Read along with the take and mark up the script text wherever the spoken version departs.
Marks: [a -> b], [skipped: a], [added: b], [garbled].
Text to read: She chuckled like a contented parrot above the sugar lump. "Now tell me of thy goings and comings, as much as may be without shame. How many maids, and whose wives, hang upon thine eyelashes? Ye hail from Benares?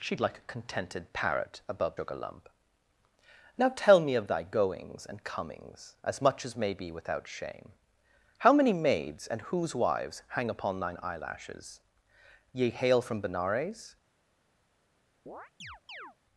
She [skipped: chuckled] like a contented parrot above [skipped: the] sugar lump. "Now tell me of thy goings and comings, as much as may be without shame. How many maids, and whose wives, hang upon thine eyelashes? Ye hail from Benares?